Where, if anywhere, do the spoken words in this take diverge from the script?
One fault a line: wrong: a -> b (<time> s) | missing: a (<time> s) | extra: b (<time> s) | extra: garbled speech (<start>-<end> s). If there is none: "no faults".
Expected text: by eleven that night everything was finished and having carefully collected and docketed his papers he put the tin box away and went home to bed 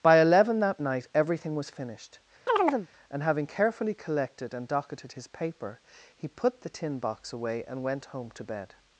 wrong: papers -> paper (5.3 s)